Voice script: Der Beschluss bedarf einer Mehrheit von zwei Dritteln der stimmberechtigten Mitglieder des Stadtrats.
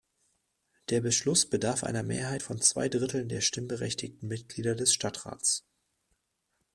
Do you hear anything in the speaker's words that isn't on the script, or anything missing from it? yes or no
no